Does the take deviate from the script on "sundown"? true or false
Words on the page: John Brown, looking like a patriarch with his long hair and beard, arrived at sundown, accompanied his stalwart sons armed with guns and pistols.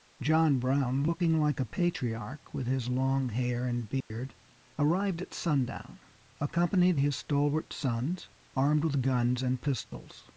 false